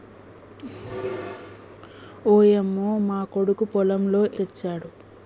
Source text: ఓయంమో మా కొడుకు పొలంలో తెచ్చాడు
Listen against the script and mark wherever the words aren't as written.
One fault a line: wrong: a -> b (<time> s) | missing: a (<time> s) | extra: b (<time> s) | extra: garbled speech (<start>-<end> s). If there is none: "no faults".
no faults